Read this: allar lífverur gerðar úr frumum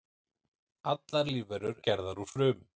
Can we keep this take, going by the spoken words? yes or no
yes